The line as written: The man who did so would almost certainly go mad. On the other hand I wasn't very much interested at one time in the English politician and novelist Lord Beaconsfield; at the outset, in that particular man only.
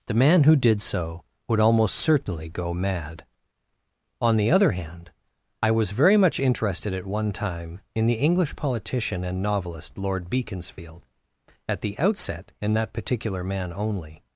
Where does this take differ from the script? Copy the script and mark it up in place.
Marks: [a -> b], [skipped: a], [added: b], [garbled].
The man who did so would almost certainly go mad. On the other hand I [wasn't -> was] very much interested at one time in the English politician and novelist Lord Beaconsfield; at the outset, in that particular man only.